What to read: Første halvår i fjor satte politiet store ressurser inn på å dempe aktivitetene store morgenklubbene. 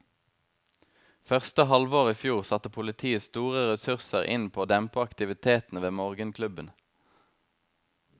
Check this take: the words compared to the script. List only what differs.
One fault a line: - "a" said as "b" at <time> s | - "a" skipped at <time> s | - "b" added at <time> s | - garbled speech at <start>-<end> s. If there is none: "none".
- "store" said as "ved" at 5.8 s